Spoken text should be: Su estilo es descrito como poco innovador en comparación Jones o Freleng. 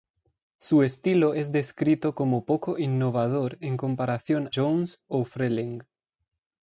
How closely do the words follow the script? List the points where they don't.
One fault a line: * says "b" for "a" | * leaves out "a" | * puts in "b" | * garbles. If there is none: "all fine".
all fine